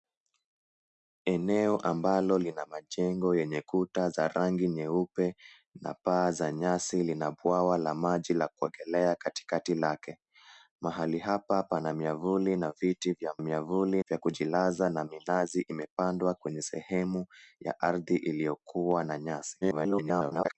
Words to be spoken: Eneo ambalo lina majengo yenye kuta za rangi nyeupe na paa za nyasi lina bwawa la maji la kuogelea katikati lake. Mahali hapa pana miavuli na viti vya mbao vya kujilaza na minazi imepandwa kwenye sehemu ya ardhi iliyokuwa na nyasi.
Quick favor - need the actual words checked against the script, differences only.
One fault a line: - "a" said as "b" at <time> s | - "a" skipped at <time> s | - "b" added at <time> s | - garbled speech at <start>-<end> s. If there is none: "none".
- "mbao" said as "miavuli" at 13.4 s
- garbled speech at 19.6-20.6 s